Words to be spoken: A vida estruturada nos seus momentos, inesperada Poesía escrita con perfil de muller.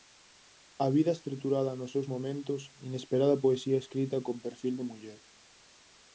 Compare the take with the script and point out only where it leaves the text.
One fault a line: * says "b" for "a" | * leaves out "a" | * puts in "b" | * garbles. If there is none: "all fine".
all fine